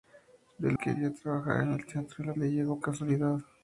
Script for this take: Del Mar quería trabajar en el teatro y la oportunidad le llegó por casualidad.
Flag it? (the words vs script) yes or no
yes